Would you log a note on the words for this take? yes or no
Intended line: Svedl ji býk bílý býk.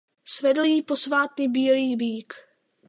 yes